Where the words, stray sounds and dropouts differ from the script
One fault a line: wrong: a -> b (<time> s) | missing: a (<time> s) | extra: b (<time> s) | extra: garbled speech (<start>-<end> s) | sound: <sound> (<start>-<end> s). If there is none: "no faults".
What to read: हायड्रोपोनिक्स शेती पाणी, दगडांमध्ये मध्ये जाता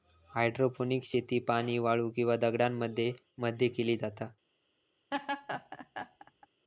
extra: वाळू किंवा (1.8 s)
extra: केली (3.7 s)
sound: laugh (5.1-6.5 s)